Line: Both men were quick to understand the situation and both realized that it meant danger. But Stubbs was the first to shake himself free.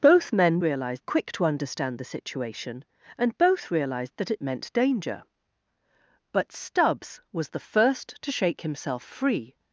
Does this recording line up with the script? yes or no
no